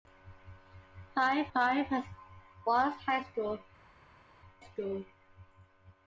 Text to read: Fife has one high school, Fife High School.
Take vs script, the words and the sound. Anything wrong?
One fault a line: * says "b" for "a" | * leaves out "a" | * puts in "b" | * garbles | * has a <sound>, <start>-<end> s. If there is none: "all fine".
* puts in "fife"
* leaves out "Fife High"